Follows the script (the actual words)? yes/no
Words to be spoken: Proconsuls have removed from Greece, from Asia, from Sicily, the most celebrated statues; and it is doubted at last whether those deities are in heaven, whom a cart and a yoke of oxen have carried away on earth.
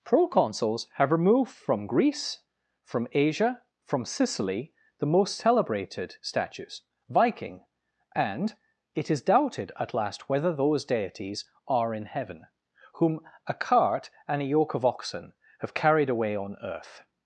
no